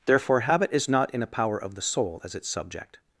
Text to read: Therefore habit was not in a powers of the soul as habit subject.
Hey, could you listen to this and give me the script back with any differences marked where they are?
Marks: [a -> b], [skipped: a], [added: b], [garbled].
Therefore habit [was -> is] not in a [powers -> power] of the soul as [habit -> its] subject.